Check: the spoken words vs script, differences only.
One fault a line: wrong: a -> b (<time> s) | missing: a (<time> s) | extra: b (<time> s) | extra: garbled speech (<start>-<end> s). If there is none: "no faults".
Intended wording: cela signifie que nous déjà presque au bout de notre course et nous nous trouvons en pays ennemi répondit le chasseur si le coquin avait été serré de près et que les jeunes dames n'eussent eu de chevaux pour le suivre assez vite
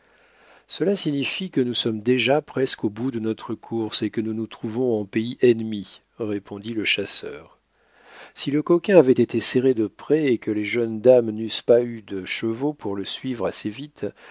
extra: sommes (1.7 s)
extra: que (4.1 s)
extra: pas (11.6 s)